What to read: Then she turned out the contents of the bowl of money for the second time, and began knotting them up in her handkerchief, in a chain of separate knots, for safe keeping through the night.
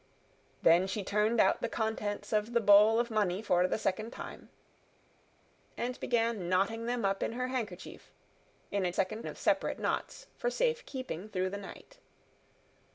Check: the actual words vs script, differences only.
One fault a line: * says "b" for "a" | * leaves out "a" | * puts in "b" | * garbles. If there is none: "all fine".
* says "second" for "chain"